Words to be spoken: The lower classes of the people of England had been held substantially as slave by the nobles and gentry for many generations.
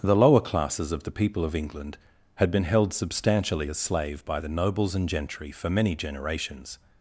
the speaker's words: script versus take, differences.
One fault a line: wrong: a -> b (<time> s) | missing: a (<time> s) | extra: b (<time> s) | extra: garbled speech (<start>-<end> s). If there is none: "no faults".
no faults